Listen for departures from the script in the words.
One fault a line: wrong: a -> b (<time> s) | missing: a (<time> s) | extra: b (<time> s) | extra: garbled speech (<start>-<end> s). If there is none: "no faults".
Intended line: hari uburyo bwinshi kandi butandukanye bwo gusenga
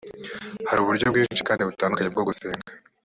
no faults